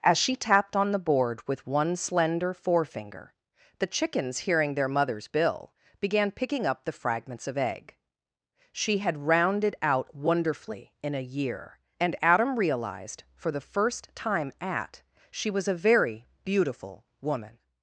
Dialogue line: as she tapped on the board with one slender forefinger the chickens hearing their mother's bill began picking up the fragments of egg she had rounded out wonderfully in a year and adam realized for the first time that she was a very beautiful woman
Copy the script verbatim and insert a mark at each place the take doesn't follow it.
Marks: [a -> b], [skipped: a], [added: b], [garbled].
as she tapped on the board with one slender forefinger the chickens hearing their mother's bill began picking up the fragments of egg she had rounded out wonderfully in a year and adam realized for the first time [that -> at] she was a very beautiful woman